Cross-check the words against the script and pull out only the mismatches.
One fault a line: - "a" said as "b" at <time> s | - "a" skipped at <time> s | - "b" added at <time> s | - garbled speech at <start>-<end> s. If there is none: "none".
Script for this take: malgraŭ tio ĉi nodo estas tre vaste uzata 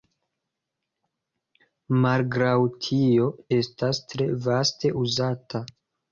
- "ĉi nodo" skipped at 3.3 s